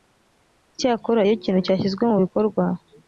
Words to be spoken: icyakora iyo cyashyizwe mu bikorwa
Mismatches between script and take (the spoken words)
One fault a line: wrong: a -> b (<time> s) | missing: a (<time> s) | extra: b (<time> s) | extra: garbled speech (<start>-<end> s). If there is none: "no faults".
extra: ikintu (1.4 s)